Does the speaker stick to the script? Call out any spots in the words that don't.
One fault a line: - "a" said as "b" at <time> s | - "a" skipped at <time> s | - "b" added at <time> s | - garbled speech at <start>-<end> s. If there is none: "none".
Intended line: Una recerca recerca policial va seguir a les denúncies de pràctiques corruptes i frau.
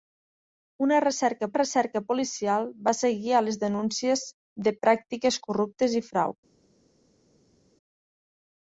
none